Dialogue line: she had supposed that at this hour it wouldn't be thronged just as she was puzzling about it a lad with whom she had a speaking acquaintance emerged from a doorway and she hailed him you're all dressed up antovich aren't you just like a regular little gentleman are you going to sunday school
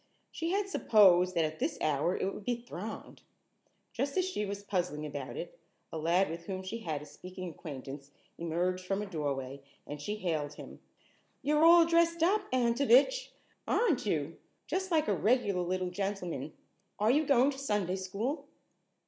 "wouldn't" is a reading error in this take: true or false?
true